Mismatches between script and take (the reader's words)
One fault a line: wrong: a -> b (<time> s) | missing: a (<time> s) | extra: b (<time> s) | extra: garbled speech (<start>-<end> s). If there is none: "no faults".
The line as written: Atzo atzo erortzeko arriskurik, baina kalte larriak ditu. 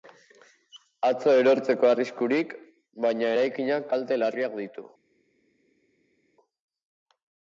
missing: atzo (1.4 s)
extra: eraikinak (3.3 s)